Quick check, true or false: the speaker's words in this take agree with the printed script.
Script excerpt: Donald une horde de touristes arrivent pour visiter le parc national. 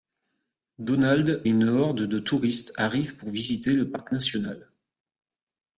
true